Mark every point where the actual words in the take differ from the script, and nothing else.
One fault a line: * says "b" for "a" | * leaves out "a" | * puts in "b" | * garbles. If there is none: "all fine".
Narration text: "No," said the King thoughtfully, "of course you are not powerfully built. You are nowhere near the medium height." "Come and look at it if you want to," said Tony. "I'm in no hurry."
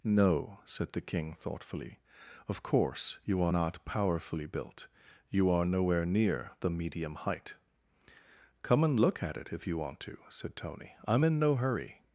all fine